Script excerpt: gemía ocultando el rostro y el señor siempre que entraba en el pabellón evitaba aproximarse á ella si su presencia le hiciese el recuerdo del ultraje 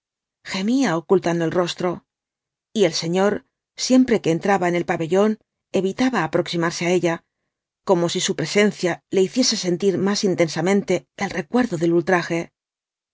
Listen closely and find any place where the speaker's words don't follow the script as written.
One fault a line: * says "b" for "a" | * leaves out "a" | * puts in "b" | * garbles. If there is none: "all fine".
* puts in "como"
* puts in "sentir más intensamente"